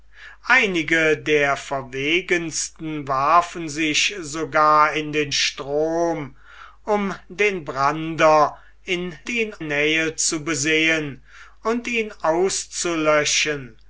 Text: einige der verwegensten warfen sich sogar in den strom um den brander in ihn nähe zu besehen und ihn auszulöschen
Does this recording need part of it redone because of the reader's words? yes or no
no